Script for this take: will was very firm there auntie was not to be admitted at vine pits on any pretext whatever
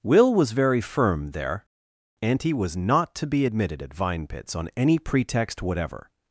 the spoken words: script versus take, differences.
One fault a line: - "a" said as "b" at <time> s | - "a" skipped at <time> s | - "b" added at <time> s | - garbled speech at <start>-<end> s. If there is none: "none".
none